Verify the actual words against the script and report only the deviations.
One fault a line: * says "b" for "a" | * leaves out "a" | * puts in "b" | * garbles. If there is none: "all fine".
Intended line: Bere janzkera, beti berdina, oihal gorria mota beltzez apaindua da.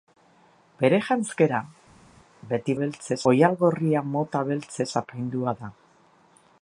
* says "beltzez" for "berdina"